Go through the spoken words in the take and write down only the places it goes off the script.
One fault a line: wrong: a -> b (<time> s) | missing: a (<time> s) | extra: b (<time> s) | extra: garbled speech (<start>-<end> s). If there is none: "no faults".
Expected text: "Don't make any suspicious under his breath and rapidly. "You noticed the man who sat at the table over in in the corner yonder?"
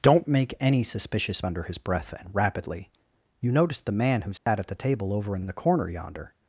no faults